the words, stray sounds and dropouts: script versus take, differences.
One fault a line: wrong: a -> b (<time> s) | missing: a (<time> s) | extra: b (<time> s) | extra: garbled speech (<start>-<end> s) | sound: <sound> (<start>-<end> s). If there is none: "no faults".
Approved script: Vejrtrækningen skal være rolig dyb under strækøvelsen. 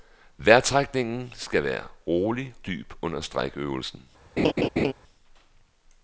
sound: laugh (4.4-4.9 s)